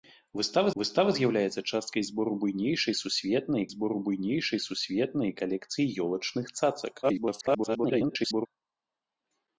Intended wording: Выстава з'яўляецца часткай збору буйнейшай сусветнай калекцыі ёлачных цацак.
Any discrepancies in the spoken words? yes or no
yes